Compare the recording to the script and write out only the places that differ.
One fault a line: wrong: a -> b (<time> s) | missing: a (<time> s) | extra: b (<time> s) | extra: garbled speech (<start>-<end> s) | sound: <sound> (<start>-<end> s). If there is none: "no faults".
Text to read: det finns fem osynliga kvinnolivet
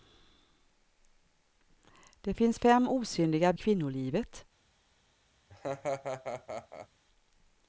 sound: laugh (5.5-6.9 s)